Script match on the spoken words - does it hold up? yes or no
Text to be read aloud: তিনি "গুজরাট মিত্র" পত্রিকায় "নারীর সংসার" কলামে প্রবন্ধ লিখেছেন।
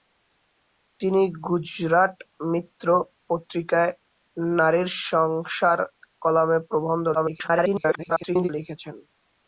no